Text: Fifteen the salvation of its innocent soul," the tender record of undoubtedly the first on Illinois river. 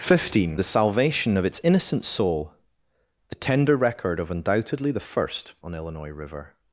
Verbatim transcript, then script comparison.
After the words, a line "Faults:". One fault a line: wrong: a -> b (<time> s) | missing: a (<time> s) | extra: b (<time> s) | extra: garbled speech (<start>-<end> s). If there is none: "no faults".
Fifteen the salvation of its innocent soul," the tender record of undoubtedly the first on Illinois river.
Faults:
no faults